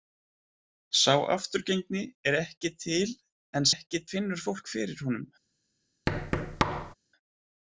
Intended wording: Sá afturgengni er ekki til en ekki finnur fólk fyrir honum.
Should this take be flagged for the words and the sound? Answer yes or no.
yes